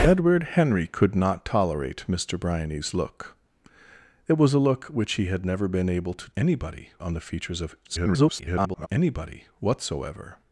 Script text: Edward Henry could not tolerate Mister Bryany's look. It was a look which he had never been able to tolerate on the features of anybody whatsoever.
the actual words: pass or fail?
fail